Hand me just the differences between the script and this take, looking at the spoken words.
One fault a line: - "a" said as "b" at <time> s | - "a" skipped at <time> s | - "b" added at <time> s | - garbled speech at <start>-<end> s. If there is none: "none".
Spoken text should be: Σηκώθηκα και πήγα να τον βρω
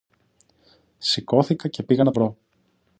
- "τον" skipped at 2.1 s